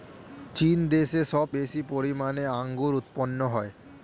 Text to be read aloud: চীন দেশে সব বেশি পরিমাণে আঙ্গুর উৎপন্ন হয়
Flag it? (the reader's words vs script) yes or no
no